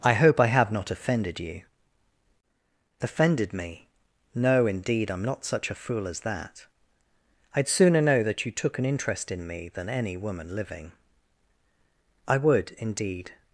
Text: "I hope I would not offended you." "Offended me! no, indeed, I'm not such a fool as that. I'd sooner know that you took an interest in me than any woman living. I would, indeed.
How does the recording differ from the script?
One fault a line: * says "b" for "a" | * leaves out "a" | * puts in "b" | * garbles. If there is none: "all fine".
* says "have" for "would"